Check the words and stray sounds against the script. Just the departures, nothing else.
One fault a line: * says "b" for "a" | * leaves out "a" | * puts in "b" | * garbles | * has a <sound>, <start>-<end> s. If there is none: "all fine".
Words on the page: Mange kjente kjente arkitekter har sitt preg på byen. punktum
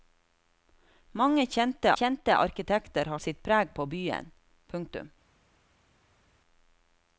all fine